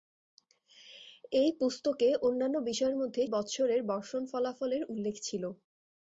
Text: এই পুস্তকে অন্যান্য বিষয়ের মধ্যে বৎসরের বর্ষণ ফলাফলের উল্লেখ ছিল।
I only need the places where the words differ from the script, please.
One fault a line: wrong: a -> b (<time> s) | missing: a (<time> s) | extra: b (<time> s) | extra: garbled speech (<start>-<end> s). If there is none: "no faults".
no faults